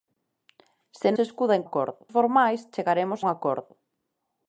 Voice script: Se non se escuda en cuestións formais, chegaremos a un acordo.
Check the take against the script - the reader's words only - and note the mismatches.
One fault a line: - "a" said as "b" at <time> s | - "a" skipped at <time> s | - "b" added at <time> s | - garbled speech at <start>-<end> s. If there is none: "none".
- "non" skipped at 1.1 s
- "cuestións" said as "acordo" at 1.7 s
- "a" skipped at 3.2 s